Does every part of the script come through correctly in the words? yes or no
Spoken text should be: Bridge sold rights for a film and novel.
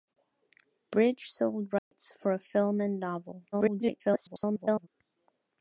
no